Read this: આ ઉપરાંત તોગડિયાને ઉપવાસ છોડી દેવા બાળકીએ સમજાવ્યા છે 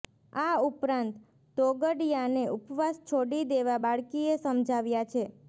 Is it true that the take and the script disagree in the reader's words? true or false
false